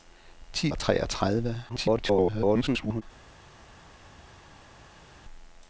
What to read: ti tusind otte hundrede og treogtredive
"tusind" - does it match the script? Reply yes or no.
no